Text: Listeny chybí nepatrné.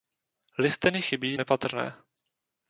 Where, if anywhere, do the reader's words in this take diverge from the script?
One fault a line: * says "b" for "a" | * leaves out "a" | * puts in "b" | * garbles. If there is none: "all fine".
all fine